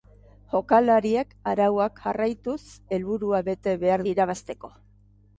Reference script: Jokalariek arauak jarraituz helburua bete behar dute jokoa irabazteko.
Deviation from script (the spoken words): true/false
true